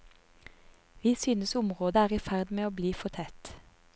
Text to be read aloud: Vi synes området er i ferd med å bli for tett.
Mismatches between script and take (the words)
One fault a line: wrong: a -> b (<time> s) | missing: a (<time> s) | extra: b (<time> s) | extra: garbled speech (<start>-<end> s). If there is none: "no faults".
no faults